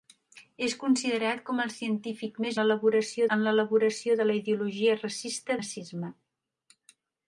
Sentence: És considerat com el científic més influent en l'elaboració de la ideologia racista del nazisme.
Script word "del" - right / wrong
wrong